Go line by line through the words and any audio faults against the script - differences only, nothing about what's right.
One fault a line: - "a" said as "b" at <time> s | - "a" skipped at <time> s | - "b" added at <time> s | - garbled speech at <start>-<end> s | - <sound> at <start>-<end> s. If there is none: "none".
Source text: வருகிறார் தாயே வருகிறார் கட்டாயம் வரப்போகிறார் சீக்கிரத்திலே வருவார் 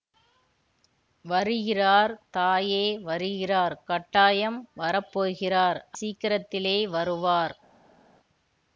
none